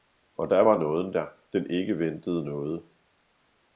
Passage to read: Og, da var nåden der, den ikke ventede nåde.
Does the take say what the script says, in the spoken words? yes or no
yes